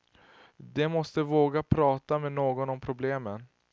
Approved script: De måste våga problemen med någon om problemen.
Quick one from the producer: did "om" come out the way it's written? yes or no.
yes